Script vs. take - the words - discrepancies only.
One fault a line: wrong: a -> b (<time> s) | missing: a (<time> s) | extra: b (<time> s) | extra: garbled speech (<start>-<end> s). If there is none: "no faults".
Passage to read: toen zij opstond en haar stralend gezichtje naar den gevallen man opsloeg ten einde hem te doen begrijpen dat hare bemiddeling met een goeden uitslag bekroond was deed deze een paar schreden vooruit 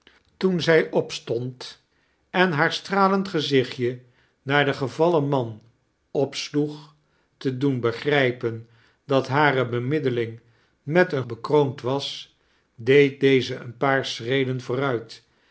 missing: ten einde hem (7.0 s)
missing: goeden uitslag (11.2 s)